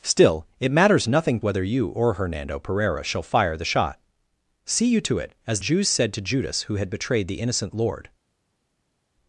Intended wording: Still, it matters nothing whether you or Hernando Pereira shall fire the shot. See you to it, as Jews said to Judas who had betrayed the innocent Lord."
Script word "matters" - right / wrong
right